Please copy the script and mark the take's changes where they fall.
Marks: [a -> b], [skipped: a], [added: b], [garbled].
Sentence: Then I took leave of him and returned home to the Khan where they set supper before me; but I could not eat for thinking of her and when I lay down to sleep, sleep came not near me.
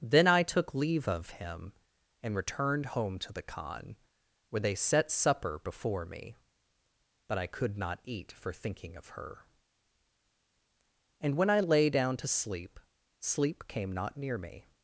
Then I took leave of him and returned home to the Khan where they set supper before me; but I could not eat for thinking of her and when I lay down to sleep, sleep came not near me.